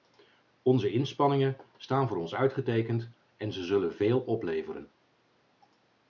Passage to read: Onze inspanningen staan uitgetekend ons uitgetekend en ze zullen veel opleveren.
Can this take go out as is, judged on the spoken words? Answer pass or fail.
fail